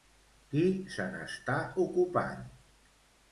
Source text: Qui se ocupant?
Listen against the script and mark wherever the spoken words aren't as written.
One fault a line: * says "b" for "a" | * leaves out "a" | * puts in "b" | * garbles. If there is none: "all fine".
* puts in "n'està"